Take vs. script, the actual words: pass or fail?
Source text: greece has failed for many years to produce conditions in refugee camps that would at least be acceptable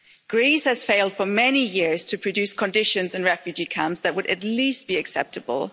pass